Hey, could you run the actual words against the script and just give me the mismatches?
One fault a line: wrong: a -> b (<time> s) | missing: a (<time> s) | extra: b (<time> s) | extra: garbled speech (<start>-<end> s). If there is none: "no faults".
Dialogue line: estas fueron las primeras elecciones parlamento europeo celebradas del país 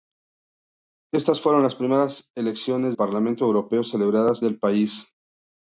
no faults